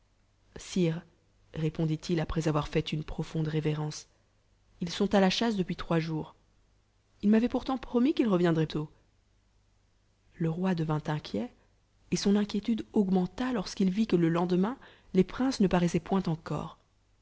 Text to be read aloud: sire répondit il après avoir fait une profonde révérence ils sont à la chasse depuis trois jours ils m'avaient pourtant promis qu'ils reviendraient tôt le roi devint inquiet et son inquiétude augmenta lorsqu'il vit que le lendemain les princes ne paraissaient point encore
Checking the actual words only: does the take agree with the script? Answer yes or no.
yes